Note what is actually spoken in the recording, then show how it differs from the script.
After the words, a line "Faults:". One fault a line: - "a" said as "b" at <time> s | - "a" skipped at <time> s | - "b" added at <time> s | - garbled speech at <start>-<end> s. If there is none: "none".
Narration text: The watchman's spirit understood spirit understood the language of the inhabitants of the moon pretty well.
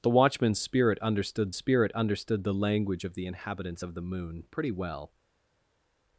The watchman's spirit understood spirit understood the language of the inhabitants of the moon pretty well.
Faults:
none